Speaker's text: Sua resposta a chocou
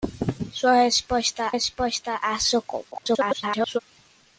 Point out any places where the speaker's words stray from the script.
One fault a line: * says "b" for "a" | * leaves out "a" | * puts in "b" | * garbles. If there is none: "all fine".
* puts in "resposta"
* garbles